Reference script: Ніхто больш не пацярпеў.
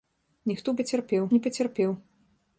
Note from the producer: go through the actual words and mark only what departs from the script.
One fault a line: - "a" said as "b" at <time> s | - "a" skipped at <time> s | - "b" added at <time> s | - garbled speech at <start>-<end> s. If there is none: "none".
- "больш" said as "пацярпеў" at 0.8 s